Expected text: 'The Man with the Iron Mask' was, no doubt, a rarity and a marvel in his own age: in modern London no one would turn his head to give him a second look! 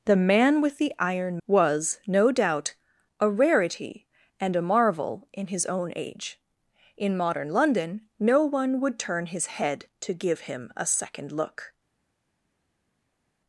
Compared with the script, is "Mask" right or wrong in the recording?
wrong